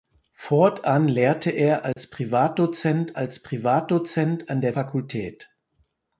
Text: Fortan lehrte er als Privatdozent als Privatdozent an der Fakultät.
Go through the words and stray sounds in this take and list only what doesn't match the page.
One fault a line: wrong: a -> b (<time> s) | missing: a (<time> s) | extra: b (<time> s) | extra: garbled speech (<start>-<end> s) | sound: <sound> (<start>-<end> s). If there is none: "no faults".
sound: dropout (1.9-2.0 s)